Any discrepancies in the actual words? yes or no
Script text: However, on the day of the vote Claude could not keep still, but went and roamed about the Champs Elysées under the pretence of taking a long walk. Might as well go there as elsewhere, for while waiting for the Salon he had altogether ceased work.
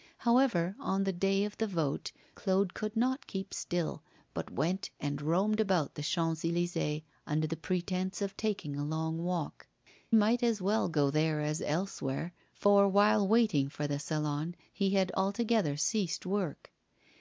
no